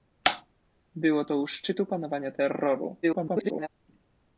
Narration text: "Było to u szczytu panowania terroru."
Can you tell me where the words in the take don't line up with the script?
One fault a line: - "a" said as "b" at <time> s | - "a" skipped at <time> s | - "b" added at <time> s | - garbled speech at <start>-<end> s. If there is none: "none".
- garbled speech at 3.0-3.7 s